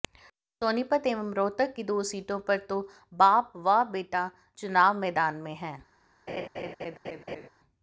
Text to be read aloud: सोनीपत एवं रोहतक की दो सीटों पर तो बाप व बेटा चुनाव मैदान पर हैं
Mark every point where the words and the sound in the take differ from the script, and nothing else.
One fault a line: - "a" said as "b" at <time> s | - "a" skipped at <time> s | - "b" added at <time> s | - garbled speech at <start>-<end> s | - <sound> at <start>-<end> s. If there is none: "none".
- "पर" said as "में" at 5.3 s
- laugh at 6.3-7.5 s